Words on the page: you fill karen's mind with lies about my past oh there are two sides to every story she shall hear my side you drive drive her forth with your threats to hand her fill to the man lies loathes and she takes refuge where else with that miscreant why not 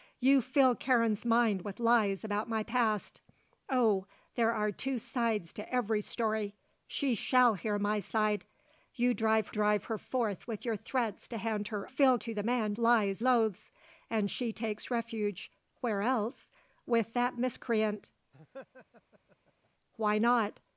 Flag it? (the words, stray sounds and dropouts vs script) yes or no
yes